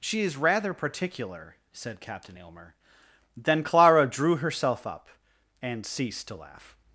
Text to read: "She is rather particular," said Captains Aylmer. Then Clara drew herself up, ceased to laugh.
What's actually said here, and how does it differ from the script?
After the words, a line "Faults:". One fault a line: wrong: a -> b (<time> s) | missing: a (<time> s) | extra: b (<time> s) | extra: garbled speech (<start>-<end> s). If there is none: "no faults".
"She is rather particular," said Captain Aylmer. Then Clara drew herself up, and ceased to laugh.
Faults:
wrong: Captains -> Captain (2.0 s)
extra: and (5.6 s)